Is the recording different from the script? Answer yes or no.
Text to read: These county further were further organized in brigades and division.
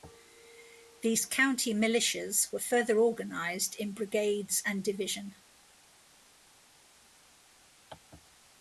yes